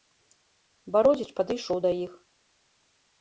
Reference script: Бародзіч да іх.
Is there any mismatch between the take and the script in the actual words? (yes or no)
yes